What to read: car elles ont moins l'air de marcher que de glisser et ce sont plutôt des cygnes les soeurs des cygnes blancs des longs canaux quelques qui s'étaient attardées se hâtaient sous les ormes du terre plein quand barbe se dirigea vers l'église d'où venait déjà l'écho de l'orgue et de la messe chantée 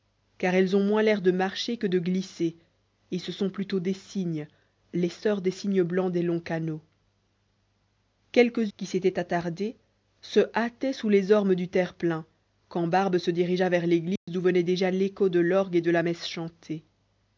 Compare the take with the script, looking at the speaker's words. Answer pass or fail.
pass